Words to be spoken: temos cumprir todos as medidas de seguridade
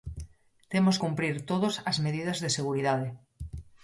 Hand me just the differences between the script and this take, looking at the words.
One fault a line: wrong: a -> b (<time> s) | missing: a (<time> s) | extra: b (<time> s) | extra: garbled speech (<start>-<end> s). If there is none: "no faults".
no faults